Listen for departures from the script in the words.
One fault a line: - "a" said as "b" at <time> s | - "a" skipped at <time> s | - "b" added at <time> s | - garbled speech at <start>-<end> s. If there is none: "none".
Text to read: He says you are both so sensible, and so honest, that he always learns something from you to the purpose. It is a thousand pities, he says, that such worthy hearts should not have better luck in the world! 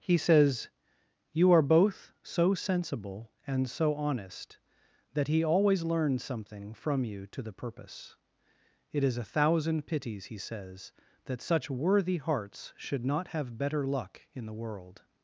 none